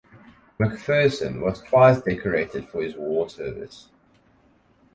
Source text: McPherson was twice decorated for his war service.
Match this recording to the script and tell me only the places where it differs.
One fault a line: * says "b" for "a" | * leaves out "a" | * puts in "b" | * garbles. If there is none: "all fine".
all fine